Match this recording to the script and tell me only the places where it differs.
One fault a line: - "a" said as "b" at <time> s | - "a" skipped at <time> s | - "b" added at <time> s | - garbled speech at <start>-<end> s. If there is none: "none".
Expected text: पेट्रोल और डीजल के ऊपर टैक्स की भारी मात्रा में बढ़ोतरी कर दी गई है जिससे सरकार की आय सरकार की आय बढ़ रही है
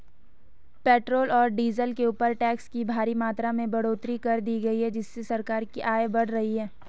- "सरकार की आय" skipped at 6.1 s